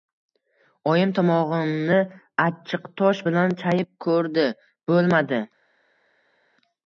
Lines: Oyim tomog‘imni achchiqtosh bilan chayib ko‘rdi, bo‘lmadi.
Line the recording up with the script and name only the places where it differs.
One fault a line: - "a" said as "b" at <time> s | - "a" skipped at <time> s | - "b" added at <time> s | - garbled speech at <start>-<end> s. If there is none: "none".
none